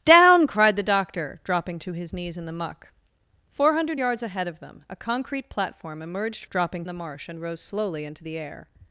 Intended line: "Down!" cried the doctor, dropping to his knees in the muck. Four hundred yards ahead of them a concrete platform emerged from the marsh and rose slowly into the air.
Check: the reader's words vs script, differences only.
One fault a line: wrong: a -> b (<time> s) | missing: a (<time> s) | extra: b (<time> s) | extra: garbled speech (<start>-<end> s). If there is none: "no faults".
wrong: from -> dropping (6.5 s)